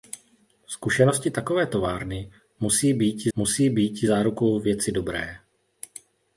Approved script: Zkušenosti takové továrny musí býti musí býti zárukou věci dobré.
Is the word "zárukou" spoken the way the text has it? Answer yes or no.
yes